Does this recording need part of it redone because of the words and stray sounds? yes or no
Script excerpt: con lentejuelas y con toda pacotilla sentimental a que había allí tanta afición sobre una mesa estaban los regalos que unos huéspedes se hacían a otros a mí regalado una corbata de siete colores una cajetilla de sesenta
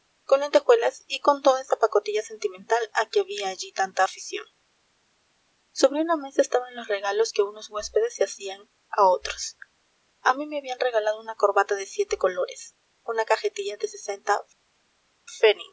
yes